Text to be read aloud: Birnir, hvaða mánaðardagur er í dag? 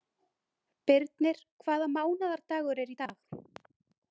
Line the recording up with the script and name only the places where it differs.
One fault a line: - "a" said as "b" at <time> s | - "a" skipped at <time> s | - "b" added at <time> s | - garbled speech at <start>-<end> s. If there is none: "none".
none